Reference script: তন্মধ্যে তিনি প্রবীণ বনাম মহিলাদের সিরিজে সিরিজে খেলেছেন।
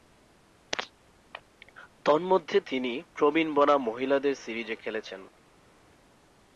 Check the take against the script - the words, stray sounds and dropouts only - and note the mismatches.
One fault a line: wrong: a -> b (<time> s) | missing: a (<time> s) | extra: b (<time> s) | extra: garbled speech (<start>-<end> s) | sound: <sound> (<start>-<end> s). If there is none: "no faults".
missing: সিরিজে (4.7 s)